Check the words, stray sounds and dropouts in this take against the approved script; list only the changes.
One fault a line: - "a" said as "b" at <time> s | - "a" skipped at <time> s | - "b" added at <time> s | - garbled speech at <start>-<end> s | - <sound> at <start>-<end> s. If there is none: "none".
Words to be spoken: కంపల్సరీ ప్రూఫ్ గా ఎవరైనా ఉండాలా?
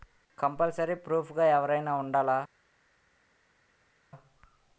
none